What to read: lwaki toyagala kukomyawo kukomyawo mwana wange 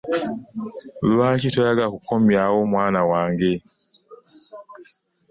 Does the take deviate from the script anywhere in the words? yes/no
yes